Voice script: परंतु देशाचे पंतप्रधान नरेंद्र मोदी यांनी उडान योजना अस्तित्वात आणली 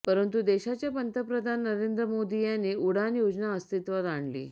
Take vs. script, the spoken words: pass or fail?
pass